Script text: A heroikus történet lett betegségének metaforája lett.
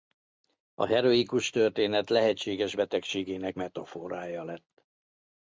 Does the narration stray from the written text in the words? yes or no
yes